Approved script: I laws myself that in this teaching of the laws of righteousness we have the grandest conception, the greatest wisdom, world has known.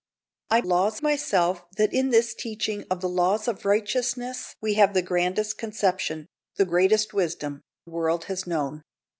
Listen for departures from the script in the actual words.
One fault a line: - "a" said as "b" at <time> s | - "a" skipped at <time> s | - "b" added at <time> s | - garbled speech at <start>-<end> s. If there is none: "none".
none